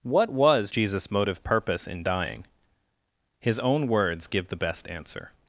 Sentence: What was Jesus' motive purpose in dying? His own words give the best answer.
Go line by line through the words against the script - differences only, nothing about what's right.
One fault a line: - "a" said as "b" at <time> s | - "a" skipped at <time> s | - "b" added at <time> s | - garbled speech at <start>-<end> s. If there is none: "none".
none